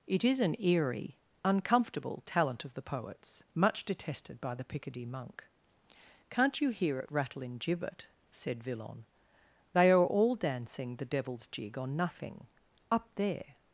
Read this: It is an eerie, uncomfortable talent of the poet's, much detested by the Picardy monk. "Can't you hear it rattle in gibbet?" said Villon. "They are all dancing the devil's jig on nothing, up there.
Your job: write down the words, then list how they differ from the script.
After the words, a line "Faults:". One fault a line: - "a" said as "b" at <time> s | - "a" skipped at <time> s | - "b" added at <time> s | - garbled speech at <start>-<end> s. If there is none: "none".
It is an eerie, uncomfortable talent of the poet's, much detested by the Picardy monk. "Can't you hear it rattle in gibbet?" said Villon. "They are all dancing the devil's jig on nothing, up there.
Faults:
none